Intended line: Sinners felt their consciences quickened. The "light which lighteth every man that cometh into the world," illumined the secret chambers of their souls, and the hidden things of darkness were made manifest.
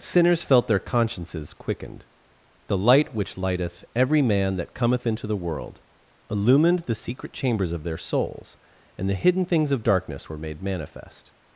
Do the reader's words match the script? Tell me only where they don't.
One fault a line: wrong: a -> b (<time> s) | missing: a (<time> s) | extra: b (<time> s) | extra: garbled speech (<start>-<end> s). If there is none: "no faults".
no faults